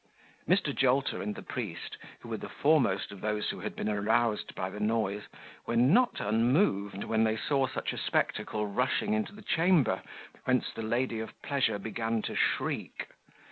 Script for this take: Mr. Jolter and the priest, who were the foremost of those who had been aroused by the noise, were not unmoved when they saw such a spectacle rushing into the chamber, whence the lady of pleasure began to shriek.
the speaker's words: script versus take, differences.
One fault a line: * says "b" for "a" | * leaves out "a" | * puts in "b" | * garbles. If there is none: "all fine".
all fine